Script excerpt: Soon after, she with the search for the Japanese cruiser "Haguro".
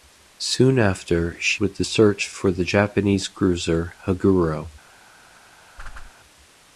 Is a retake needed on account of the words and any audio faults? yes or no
yes